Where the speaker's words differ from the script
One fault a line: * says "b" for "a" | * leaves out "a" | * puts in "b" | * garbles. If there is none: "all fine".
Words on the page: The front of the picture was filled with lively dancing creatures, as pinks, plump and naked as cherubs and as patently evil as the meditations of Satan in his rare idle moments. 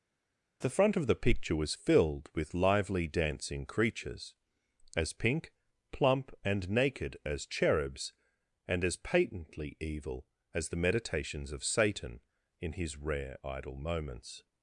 * says "pink" for "pinks"